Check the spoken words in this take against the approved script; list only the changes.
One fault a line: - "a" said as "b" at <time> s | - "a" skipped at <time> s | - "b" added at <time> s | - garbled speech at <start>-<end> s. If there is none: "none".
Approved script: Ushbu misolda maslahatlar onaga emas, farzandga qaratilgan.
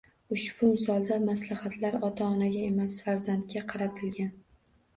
- "ota" added at 2.1 s